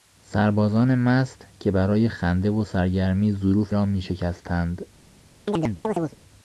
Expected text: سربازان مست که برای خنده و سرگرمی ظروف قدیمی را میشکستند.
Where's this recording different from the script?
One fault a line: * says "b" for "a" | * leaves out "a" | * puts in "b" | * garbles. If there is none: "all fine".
* leaves out "قدیمی"